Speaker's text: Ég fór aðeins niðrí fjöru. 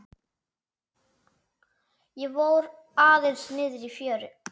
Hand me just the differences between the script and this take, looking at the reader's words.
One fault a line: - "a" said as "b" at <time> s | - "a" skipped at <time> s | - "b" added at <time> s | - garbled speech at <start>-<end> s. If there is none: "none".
none